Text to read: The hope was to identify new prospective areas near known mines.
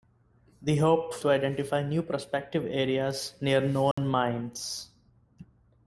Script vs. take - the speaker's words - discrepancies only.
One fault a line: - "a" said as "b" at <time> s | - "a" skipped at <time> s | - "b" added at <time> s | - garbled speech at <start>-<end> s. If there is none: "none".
- "was" skipped at 1.2 s